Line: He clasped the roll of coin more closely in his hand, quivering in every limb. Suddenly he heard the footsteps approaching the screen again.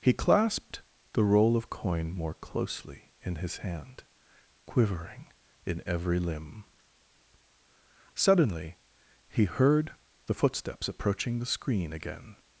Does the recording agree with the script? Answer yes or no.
yes